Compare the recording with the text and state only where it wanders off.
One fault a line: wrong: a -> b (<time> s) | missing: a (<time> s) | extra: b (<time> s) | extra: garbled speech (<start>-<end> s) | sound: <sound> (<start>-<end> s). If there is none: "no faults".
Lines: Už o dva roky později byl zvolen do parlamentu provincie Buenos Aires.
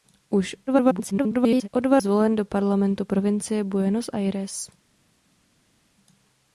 extra: garbled speech (0.7-1.7 s)
missing: roky později byl (2.0 s)